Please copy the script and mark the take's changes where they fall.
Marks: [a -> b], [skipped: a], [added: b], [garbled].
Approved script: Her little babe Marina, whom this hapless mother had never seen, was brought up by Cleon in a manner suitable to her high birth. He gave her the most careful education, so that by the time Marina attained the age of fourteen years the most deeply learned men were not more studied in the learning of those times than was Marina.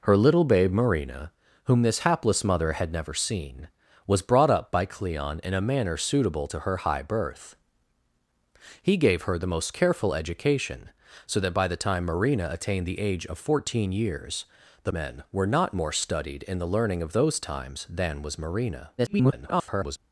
Her little babe Marina, whom this hapless mother had never seen, was brought up by Cleon in a manner suitable to her high birth. He gave her the most careful education, so that by the time Marina attained the age of fourteen years the [skipped: most deeply learned] men were not more studied in the learning of those times than was Marina. [garbled]